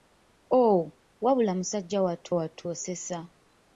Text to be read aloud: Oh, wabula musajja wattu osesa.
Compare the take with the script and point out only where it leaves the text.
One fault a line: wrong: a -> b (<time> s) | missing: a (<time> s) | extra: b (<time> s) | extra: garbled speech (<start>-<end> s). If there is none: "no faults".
extra: wattu (2.3 s)